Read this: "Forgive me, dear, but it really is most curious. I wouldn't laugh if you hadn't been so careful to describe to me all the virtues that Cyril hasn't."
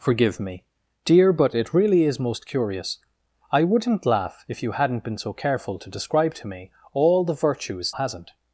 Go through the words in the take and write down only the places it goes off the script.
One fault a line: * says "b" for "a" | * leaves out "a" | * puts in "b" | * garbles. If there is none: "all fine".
* leaves out "that Cyril"